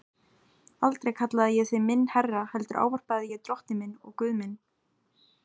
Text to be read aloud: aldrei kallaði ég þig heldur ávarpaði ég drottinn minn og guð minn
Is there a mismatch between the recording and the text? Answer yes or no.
yes